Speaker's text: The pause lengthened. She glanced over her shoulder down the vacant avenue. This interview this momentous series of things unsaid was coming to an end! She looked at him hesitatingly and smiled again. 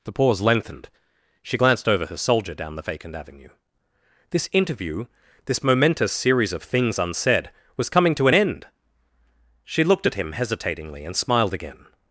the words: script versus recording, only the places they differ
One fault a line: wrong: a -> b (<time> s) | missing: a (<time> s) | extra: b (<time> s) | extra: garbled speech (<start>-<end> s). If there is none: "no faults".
wrong: shoulder -> soldier (2.2 s)